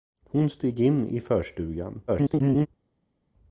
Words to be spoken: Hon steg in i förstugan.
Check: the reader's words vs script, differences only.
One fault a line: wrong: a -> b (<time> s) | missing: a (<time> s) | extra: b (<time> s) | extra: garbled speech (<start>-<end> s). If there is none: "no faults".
extra: garbled speech (2.1-2.7 s)